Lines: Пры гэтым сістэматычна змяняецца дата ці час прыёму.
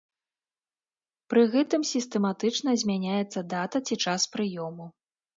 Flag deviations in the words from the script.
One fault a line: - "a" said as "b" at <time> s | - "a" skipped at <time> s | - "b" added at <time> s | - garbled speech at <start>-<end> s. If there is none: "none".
none